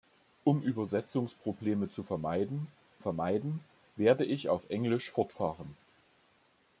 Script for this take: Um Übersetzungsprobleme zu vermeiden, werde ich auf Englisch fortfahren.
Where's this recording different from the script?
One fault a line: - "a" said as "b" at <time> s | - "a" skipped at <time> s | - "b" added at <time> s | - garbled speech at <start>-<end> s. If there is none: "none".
- "vermeiden" added at 3.0 s